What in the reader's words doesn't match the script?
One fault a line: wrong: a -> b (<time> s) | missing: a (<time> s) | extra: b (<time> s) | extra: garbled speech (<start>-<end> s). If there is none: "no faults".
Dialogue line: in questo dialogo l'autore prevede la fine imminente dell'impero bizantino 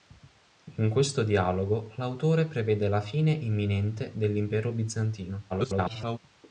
extra: garbled speech (5.5-6.2 s)